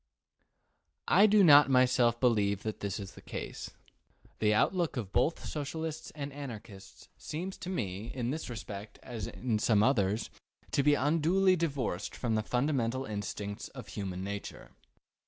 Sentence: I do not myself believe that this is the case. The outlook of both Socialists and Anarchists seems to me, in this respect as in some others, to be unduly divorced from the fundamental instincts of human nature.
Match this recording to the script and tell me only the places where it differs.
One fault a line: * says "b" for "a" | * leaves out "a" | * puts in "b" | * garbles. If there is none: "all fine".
all fine